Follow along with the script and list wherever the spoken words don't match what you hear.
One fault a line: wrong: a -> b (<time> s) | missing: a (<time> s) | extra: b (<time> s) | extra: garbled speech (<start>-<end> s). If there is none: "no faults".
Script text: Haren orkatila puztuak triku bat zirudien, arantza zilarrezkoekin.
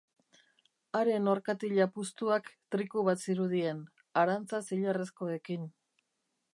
no faults